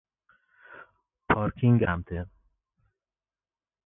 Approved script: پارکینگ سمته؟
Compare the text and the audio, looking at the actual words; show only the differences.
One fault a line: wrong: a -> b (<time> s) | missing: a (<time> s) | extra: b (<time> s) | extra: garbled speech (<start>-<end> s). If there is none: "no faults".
no faults